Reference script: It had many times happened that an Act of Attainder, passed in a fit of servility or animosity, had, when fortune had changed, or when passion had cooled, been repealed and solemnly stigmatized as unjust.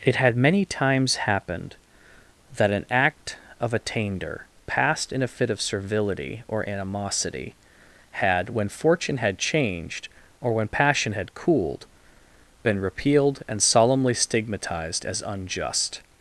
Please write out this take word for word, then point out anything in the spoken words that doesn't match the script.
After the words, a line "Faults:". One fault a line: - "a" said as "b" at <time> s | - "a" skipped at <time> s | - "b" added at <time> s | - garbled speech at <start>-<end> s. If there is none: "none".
It had many times happened that an Act of Attainder, passed in a fit of servility or animosity, had, when fortune had changed, or when passion had cooled, been repealed and solemnly stigmatized as unjust.
Faults:
none